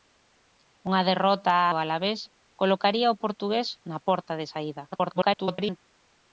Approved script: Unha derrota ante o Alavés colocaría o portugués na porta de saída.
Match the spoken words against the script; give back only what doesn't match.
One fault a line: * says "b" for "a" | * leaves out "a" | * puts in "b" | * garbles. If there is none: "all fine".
* leaves out "ante"
* garbles